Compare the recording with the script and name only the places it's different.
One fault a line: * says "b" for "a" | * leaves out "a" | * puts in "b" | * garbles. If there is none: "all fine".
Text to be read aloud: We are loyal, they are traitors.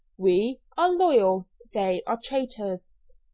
all fine